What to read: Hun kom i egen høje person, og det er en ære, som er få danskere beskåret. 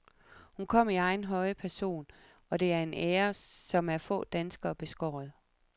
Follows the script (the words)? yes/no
yes